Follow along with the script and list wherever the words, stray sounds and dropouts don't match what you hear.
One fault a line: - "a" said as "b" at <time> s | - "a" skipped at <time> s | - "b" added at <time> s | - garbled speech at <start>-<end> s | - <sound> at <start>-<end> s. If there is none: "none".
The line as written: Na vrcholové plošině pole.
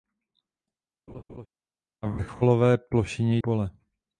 - laugh at 1.1-1.5 s